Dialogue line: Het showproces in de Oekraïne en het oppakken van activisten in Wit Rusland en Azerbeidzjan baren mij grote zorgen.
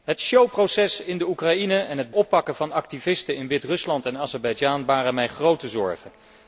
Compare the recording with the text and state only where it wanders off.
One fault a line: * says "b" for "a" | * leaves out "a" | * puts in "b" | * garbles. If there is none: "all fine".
all fine